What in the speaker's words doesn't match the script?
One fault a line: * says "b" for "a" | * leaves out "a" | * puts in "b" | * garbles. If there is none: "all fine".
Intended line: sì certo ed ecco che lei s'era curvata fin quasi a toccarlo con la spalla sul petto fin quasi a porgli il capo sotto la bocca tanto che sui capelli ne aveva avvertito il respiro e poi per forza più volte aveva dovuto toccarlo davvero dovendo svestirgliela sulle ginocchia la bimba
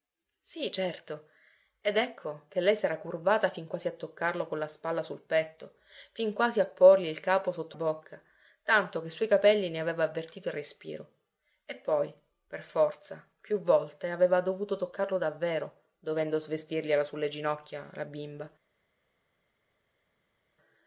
* leaves out "la"